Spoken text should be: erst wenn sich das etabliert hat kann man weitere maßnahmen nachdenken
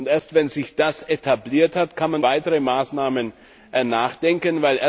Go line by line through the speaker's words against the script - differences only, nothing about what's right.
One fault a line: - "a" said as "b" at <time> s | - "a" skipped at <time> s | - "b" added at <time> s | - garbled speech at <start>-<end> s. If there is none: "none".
none